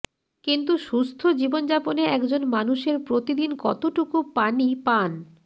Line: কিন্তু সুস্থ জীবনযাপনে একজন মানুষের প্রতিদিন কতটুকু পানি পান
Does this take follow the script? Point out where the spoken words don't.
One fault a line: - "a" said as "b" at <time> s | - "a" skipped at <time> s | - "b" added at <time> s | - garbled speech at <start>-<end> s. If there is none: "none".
none